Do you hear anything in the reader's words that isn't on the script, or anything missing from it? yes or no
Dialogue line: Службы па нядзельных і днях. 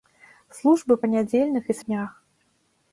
no